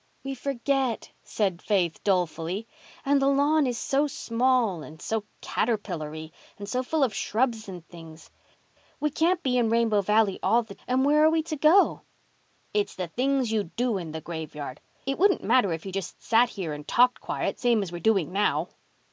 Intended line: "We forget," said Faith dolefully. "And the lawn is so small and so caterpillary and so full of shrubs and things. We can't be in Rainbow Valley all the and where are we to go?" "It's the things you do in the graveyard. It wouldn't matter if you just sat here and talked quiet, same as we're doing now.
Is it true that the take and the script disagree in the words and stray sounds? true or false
false